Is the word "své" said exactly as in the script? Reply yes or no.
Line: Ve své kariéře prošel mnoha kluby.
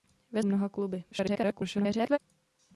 no